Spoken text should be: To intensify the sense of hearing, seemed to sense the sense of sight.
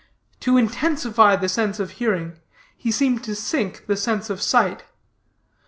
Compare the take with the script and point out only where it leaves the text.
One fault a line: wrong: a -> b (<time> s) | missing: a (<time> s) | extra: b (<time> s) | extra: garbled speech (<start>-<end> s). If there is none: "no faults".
extra: he (2.8 s)
wrong: sense -> sink (3.4 s)